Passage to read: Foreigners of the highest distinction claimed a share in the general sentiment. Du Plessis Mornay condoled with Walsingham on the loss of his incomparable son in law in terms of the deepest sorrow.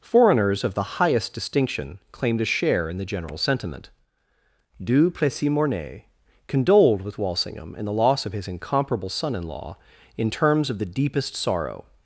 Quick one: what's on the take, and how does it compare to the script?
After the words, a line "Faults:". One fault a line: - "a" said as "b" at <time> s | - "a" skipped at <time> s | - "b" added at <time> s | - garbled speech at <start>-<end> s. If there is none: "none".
Foreigners of the highest distinction claimed a share in the general sentiment. Du Plessis Mornay condoled with Walsingham in the loss of his incomparable son in law in terms of the deepest sorrow.
Faults:
- "on" said as "in" at 7.8 s